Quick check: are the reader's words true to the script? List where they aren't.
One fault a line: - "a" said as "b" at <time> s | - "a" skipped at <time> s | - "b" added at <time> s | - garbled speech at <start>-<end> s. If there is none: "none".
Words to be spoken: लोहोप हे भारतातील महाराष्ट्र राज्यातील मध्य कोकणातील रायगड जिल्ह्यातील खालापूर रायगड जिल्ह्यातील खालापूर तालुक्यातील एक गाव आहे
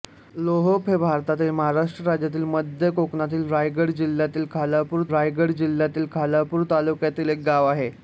none